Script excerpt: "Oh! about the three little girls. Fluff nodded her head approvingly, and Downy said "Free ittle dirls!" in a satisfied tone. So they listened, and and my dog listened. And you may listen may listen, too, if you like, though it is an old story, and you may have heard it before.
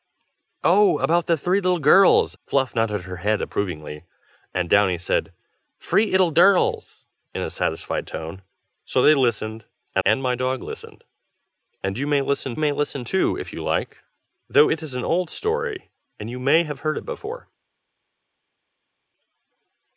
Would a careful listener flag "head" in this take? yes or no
no